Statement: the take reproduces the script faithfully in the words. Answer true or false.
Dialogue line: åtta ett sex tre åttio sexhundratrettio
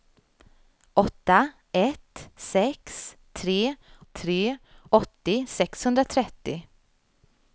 false